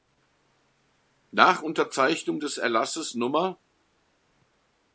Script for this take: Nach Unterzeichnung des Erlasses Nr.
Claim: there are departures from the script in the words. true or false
false